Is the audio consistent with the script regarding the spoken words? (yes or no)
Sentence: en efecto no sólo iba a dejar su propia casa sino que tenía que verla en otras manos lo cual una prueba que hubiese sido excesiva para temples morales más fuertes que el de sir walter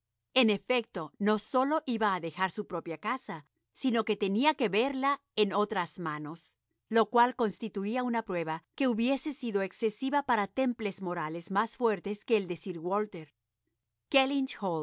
no